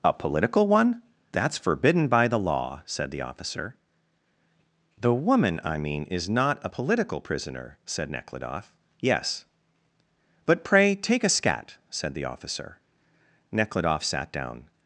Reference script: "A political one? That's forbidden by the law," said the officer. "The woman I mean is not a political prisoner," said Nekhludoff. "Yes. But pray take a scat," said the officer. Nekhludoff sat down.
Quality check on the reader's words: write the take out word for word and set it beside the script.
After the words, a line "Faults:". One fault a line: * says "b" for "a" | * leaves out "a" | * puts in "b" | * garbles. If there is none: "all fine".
"A political one? That's forbidden by the law," said the officer. "The woman I mean is not a political prisoner," said Nekhludoff. "Yes. But pray take a scat," said the officer. Nekhludoff sat down.
Faults:
all fine